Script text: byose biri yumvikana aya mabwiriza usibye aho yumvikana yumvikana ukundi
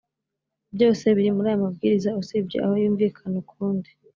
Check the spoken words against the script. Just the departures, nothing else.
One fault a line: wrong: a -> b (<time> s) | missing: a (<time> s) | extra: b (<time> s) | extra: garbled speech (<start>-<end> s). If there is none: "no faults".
wrong: yumvikana -> muri (1.4 s)
missing: yumvikana (3.3 s)